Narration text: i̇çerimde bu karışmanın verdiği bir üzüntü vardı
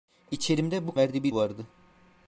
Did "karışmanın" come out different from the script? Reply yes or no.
yes